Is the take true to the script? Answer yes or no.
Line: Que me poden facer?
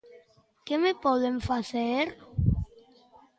yes